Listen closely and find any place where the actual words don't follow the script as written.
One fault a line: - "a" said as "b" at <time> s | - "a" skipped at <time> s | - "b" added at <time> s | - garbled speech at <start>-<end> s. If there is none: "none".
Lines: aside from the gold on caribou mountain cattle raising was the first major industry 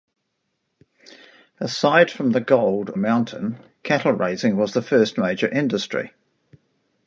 - "on caribou" skipped at 2.9 s